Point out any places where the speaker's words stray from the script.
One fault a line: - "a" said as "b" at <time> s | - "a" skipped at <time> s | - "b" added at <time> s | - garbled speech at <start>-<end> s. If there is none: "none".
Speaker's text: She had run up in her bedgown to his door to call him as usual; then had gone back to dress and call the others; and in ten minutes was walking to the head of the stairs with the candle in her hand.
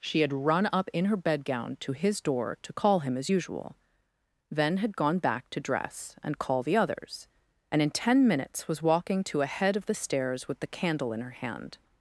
- "the" said as "a" at 9.4 s